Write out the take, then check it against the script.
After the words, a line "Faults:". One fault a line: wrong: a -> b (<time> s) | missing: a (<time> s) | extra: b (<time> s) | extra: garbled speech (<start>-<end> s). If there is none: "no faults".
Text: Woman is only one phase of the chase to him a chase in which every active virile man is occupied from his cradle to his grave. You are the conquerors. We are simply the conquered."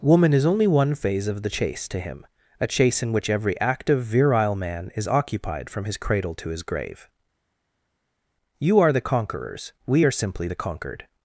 Woman is only one phase of the chase to him a chase in which every active virile man is occupied from his cradle to his grave. You are the conquerors. We are simply the conquered."
Faults:
no faults